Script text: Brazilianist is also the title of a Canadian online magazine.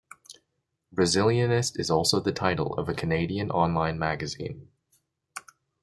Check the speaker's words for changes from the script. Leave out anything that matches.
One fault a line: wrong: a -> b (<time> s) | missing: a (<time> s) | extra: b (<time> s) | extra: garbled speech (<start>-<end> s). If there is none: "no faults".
no faults